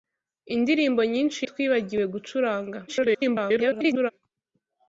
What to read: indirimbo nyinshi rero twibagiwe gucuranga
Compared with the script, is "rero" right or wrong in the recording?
wrong